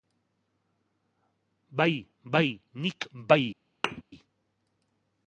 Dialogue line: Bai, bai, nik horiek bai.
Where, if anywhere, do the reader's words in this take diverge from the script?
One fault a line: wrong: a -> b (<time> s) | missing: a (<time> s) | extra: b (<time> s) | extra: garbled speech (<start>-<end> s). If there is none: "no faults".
missing: horiek (3.1 s)